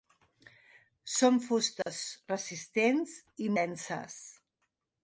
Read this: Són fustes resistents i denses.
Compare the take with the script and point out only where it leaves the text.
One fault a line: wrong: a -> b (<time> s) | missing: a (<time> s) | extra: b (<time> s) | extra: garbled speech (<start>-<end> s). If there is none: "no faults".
no faults